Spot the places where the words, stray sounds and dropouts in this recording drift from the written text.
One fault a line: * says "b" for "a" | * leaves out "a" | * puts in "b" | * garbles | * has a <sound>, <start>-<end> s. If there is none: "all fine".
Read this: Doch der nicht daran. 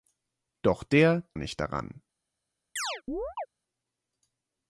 * has a chirp, 2.8-3.5 s